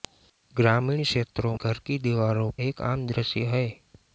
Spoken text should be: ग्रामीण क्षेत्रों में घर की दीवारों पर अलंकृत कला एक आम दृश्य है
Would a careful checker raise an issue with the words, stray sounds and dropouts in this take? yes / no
yes